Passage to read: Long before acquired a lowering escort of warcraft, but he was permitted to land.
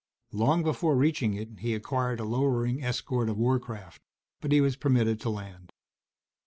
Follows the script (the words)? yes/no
no